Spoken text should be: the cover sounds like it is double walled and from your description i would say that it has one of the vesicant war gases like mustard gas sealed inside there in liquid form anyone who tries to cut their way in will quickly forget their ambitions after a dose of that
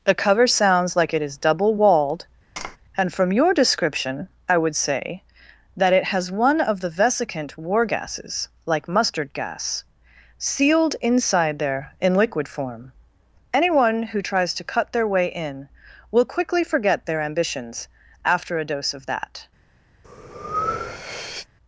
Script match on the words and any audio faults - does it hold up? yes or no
no